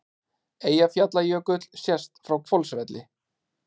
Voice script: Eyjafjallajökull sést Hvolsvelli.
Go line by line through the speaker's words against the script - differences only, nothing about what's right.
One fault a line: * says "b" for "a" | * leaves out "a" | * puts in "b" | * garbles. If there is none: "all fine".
* puts in "frá"